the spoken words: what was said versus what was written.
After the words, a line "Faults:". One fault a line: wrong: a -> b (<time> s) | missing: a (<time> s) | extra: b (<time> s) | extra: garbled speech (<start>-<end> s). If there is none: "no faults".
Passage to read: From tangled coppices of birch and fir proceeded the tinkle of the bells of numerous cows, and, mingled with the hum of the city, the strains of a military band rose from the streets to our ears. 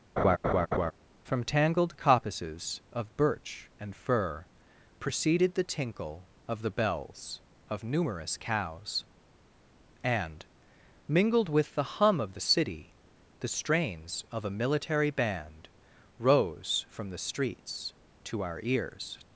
From tangled coppices of birch and fir proceeded the tinkle of the bells of numerous cows, and, mingled with the hum of the city, the strains of a military band rose from the streets to our ears.
Faults:
no faults